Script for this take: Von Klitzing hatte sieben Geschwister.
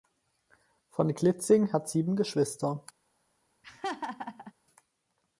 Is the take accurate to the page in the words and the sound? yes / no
no